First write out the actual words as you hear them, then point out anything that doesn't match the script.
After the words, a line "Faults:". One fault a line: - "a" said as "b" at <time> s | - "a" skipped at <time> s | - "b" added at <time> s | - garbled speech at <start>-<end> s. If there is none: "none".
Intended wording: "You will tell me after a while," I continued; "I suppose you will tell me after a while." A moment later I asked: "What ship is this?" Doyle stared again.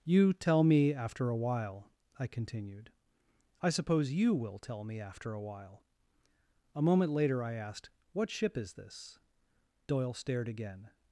"You tell me after a while," I continued; "I suppose you will tell me after a while." A moment later I asked: "What ship is this?" Doyle stared again.
Faults:
- "will" skipped at 0.3 s